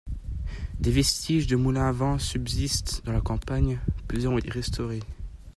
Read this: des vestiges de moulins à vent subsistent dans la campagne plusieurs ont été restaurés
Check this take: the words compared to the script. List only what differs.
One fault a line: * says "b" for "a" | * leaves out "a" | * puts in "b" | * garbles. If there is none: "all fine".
* leaves out "été"